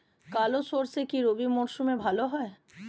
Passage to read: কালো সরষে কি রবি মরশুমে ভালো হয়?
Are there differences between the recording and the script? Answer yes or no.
no